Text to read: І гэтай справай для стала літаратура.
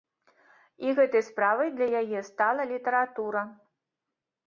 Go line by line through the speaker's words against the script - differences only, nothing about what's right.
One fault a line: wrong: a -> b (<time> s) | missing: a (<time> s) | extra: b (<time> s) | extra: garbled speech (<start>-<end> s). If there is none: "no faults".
extra: яе (2.0 s)